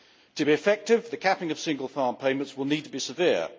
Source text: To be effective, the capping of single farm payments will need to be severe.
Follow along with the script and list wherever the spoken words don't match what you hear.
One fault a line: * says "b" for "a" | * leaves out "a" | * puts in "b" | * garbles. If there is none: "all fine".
all fine